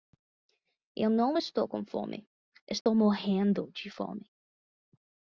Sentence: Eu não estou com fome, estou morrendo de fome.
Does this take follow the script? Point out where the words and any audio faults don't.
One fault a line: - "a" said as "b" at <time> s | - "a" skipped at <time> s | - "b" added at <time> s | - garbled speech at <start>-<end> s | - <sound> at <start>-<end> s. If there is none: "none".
- dropout at 2.8-2.9 s